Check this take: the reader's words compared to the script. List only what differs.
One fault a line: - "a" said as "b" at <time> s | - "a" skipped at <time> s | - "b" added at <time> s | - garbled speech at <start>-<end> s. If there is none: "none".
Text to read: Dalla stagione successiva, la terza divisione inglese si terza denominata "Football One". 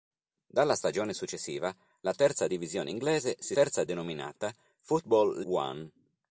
none